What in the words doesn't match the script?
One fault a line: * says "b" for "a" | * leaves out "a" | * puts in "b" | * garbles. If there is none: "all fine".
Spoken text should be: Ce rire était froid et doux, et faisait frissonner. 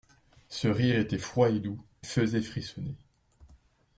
* leaves out "et"